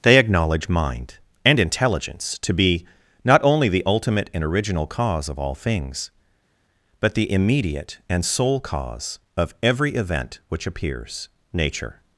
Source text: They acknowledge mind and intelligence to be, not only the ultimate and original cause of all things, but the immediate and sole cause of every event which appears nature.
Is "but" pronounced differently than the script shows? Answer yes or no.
no